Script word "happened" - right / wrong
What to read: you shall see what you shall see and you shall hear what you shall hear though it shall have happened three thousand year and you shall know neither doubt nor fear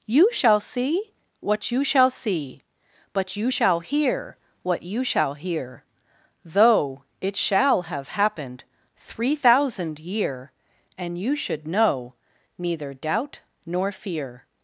right